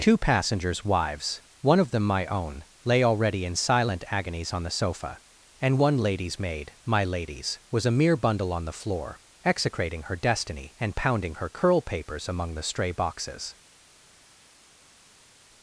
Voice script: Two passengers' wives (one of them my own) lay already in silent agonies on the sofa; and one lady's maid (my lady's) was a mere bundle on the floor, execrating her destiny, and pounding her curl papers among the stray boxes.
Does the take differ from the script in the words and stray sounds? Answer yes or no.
no